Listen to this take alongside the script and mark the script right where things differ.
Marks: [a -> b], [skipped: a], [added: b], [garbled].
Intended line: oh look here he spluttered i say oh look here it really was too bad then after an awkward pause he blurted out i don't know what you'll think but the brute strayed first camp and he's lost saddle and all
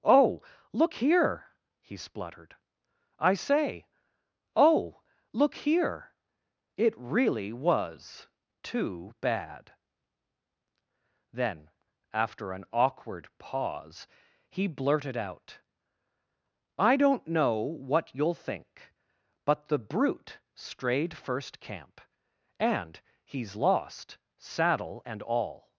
oh look here he spluttered i say oh look here it really was too bad then after an awkward pause he blurted out i don't know what you'll think but the brute strayed first camp and he's lost saddle and all